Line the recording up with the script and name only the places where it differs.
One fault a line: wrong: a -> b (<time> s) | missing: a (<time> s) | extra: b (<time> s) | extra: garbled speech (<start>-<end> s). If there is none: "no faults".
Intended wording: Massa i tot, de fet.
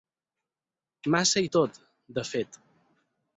no faults